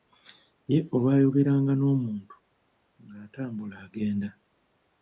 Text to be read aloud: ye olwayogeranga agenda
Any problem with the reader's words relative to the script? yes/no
yes